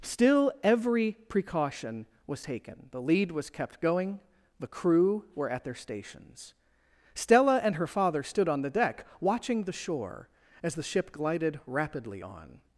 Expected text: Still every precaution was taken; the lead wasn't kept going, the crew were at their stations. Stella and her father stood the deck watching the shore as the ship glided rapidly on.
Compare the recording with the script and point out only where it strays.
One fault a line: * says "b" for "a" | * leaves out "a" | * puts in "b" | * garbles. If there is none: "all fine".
* says "was" for "wasn't"
* puts in "on"